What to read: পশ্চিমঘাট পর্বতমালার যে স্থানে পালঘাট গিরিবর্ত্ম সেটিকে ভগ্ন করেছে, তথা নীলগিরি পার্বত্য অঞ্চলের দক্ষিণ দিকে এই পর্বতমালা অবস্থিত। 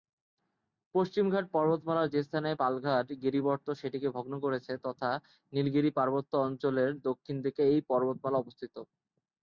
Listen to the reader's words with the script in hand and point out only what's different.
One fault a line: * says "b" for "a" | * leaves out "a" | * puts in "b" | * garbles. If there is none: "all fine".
all fine